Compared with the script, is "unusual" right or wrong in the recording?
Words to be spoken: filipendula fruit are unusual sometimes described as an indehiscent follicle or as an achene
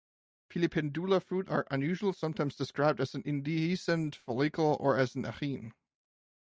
right